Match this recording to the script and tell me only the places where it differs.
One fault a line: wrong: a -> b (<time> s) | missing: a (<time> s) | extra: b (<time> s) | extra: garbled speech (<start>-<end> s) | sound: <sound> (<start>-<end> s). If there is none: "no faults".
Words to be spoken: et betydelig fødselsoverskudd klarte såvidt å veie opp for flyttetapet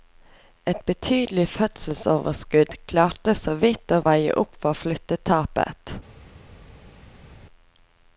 no faults